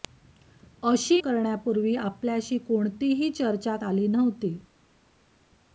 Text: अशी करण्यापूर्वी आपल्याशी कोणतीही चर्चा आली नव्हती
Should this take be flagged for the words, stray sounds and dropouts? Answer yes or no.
no